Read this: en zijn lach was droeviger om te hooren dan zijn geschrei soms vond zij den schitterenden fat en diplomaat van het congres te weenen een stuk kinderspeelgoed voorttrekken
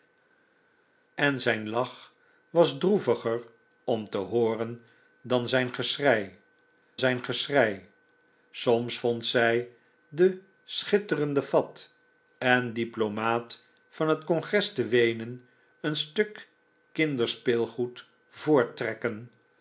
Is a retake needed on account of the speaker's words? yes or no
yes